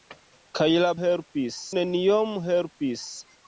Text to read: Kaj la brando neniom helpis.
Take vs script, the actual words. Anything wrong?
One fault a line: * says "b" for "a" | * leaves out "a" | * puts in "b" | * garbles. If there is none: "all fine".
* says "helpis" for "brando"